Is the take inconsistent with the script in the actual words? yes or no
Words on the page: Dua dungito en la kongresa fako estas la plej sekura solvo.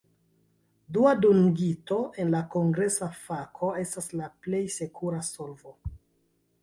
no